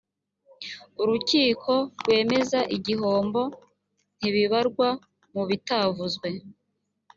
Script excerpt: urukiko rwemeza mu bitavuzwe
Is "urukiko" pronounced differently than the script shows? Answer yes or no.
no